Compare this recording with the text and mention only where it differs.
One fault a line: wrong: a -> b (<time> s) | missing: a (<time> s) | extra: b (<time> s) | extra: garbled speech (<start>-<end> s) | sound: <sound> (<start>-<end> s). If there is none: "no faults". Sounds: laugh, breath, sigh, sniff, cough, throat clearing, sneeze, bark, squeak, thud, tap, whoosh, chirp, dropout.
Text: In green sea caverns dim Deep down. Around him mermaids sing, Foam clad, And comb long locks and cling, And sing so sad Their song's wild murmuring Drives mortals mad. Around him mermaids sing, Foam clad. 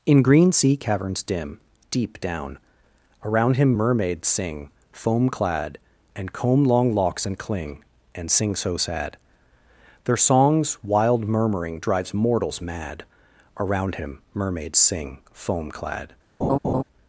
sound: laugh (16.4-16.8 s)